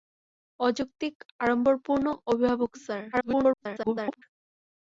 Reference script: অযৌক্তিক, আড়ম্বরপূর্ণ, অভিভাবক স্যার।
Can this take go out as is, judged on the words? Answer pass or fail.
fail